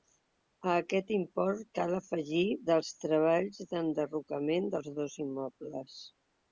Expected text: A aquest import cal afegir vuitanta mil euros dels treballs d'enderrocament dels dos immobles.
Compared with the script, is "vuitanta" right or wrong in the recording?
wrong